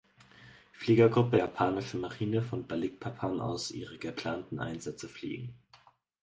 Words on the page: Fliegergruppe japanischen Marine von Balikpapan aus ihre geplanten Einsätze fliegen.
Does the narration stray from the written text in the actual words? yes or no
no